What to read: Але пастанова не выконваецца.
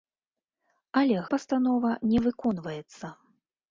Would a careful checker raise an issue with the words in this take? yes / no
no